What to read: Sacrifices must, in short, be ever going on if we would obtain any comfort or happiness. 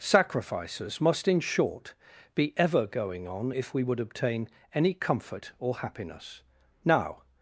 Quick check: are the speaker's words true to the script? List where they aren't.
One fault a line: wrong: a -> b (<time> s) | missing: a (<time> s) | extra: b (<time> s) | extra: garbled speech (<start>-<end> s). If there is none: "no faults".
extra: Now (6.8 s)